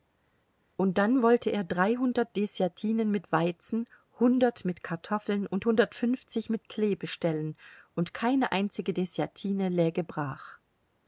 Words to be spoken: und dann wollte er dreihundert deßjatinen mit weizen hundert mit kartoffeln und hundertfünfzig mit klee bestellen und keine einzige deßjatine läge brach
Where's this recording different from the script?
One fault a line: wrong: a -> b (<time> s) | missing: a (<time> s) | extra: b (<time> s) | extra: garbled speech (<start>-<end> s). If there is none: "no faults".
no faults